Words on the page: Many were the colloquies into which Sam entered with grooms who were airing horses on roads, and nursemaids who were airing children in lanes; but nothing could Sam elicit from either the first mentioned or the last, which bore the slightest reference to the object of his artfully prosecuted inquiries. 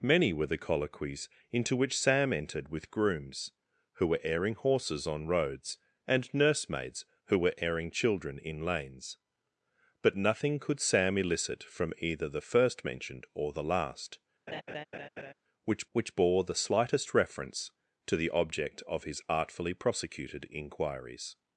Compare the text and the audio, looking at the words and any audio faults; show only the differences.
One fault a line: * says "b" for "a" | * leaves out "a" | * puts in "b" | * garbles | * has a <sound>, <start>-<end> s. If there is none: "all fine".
* has a laugh, 14.5-15.3 s
* puts in "which"